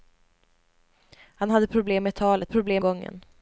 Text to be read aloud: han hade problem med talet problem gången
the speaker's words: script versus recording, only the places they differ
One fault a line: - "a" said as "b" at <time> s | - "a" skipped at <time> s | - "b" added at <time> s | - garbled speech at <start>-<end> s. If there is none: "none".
none